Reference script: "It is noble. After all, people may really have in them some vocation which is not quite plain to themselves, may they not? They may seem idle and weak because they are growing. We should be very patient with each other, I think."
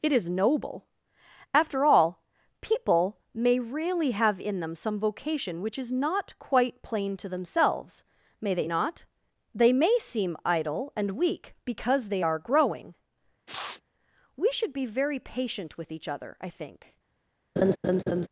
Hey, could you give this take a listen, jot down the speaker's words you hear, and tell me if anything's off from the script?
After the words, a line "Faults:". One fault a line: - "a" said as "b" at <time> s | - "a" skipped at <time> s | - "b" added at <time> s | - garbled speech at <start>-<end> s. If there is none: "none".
"It is noble. After all, people may really have in them some vocation which is not quite plain to themselves, may they not? They may seem idle and weak because they are growing. We should be very patient with each other, I think."
Faults:
none